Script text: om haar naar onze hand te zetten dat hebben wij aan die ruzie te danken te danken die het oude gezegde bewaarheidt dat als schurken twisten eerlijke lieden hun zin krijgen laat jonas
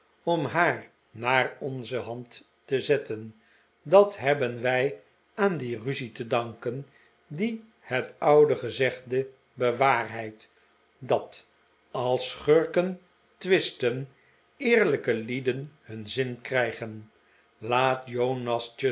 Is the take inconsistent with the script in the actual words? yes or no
yes